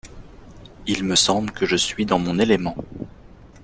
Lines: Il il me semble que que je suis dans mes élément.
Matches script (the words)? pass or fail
fail